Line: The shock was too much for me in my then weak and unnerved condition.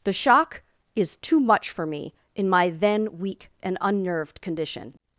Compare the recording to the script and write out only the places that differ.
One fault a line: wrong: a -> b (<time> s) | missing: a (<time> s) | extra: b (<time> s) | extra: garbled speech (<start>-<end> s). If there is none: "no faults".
wrong: was -> is (1.0 s)